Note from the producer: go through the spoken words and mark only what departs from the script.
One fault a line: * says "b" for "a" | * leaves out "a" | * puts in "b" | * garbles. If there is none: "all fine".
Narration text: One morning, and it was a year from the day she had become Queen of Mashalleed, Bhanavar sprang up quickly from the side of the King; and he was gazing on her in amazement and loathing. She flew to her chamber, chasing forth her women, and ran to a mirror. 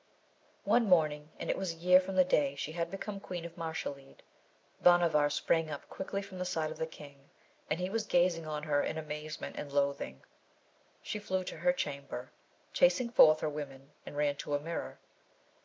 all fine